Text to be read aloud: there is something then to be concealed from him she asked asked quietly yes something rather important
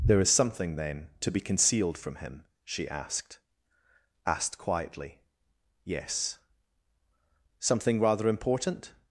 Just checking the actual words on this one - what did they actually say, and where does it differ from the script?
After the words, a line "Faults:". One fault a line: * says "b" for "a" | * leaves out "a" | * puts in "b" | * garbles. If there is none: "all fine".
there is something then to be concealed from him she asked asked quietly yes something rather important
Faults:
all fine